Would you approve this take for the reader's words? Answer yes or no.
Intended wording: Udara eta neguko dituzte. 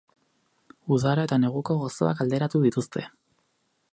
no